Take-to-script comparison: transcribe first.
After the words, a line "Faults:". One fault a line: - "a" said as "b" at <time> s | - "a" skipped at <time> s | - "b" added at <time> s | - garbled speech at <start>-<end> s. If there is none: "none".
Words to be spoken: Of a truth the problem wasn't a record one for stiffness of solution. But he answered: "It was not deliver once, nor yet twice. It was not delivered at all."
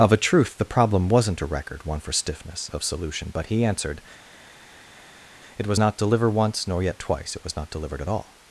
Of a truth the problem wasn't a record one for stiffness of solution. But he answered: "It was not deliver once, nor yet twice. It was not delivered at all."
Faults:
none